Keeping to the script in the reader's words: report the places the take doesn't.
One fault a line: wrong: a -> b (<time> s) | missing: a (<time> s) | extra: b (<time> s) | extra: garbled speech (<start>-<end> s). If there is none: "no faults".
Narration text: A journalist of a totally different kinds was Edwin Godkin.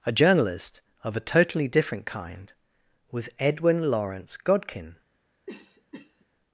wrong: kinds -> kind (2.1 s)
extra: Lawrence (3.9 s)